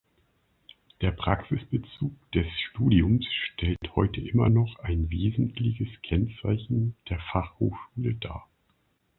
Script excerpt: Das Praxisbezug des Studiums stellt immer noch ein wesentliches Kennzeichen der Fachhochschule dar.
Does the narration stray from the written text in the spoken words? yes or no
yes